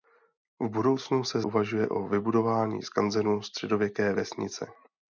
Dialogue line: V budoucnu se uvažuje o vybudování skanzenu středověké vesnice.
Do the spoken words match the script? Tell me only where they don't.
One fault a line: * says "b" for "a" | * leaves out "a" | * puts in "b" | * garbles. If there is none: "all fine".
all fine